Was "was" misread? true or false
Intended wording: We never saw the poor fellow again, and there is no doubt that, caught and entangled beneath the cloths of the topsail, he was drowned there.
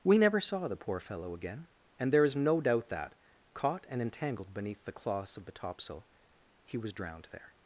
false